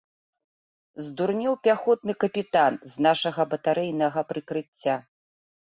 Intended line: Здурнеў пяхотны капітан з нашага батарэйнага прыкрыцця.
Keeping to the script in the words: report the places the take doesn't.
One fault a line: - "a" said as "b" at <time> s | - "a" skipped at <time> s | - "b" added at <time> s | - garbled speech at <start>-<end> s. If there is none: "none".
none